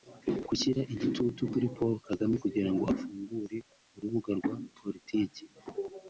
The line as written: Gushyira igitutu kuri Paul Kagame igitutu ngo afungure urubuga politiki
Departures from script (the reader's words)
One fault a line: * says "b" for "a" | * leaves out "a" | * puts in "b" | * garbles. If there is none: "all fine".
* says "kugira" for "igitutu"
* puts in "rwa"